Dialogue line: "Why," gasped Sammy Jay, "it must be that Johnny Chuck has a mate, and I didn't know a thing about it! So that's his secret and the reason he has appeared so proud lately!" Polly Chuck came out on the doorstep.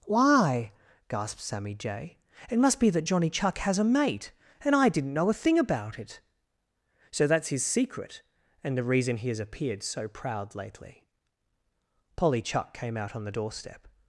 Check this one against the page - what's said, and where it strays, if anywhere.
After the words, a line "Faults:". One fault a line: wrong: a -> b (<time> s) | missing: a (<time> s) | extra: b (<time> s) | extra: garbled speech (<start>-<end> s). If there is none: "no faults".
"Why," gasped Sammy Jay, "it must be that Johnny Chuck has a mate, and I didn't know a thing about it! So that's his secret and the reason he has appeared so proud lately!" Polly Chuck came out on the doorstep.
Faults:
no faults